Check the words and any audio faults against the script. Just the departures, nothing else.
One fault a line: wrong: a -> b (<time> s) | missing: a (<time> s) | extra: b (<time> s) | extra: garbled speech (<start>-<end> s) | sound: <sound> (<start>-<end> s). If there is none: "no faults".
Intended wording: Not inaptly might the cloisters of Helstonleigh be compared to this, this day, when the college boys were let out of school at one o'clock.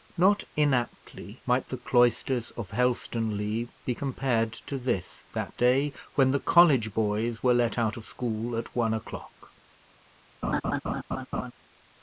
wrong: this -> that (5.3 s)
sound: laugh (10.4-11.5 s)